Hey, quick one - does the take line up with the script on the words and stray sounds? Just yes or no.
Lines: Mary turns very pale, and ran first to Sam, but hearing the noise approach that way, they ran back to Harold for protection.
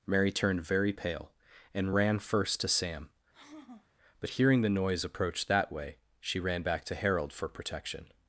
no